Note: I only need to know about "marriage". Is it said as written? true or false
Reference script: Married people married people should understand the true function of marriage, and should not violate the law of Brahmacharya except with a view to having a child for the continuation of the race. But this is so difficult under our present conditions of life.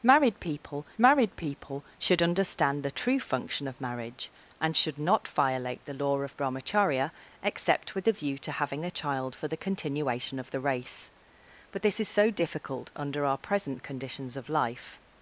true